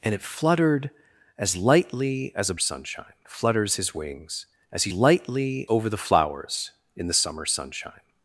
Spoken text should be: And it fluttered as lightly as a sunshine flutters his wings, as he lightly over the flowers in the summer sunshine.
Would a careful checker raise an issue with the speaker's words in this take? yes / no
no